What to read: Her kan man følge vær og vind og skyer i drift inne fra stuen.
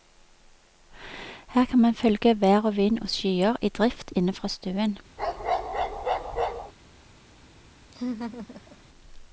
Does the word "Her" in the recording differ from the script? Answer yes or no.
no